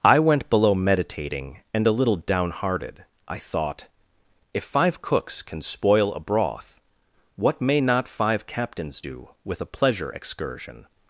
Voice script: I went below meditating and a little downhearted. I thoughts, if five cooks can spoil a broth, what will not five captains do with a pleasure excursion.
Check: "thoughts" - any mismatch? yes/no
yes